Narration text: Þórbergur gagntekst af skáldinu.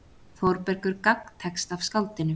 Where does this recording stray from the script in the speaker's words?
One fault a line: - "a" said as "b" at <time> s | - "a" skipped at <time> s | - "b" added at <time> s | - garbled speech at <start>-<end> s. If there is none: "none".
none